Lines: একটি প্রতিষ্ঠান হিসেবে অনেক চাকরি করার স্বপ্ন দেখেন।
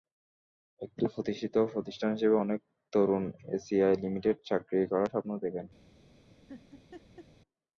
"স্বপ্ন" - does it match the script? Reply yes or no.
yes